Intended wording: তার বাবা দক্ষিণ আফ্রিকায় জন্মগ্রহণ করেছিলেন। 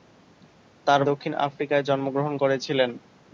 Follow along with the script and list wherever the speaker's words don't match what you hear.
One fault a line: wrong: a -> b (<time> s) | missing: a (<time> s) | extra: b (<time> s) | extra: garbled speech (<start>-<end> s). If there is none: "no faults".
missing: বাবা (1.0 s)